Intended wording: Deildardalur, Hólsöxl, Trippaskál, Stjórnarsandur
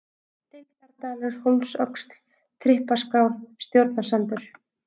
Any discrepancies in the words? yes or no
no